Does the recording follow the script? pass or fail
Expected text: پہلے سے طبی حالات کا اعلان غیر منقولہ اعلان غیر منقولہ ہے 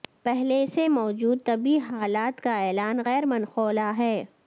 fail